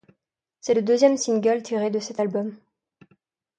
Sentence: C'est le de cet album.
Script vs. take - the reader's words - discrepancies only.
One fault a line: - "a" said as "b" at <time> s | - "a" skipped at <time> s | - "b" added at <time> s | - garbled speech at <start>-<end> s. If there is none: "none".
- "deuxième single tiré" added at 0.8 s